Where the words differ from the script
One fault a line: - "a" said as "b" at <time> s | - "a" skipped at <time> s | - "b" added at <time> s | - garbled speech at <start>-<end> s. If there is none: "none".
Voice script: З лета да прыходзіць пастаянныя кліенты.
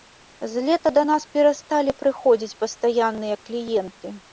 - "нас перасталі" added at 1.1 s